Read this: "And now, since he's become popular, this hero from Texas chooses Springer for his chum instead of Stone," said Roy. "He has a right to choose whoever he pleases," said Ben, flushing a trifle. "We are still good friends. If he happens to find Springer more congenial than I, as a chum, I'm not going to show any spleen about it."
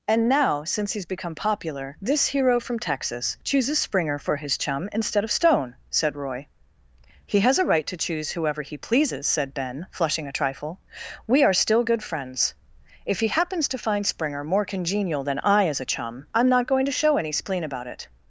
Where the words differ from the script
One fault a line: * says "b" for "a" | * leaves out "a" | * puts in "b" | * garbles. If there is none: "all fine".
all fine